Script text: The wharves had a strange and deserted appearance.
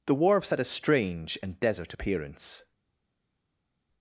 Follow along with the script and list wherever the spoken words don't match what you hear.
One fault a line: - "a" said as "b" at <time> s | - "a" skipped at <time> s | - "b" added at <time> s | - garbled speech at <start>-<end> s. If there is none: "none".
- "deserted" said as "desert" at 1.6 s